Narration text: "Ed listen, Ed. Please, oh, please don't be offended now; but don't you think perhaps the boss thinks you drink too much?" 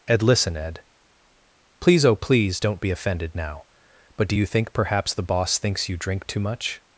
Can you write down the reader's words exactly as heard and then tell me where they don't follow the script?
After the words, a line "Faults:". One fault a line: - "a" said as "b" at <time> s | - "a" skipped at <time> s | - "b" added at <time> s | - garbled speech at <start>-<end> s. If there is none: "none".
"Ed listen, Ed. Please, oh, please don't be offended now; but do you think perhaps the boss thinks you drink too much?"
Faults:
- "don't" said as "do" at 4.3 s